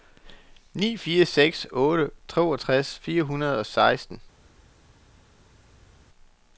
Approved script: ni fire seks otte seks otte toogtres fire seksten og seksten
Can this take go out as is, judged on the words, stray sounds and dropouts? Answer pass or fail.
fail